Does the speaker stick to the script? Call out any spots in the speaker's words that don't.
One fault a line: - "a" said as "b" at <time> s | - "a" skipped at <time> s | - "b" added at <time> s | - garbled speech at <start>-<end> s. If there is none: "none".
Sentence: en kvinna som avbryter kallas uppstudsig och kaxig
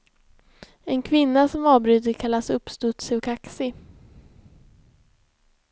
none